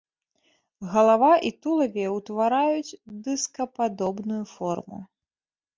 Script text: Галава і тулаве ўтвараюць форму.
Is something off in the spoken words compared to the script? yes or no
yes